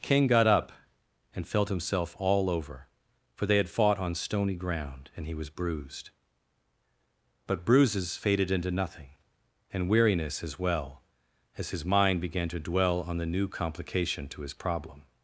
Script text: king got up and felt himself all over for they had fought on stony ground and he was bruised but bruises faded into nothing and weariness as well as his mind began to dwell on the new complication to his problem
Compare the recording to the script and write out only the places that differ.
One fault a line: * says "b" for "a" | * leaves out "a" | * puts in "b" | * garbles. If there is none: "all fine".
all fine